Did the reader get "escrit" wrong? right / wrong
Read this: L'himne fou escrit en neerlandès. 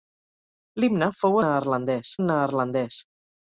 wrong